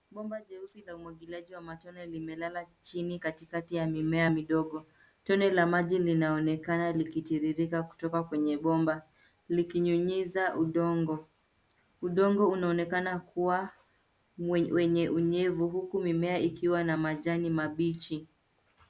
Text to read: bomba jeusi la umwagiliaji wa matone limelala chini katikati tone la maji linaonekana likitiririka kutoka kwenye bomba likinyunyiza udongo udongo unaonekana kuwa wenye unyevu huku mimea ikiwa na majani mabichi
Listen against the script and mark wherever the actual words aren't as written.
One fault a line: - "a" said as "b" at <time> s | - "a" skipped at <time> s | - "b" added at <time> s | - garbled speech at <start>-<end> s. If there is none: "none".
- "ya mimea midogo" added at 3.7 s